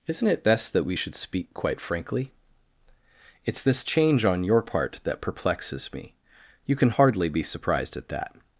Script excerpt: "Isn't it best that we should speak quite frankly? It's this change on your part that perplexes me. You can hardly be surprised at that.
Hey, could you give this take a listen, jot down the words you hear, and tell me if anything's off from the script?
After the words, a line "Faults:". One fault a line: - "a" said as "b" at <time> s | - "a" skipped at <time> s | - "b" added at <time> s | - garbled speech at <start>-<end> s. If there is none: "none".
"Isn't it best that we should speak quite frankly? It's this change on your part that perplexes me. You can hardly be surprised at that.
Faults:
none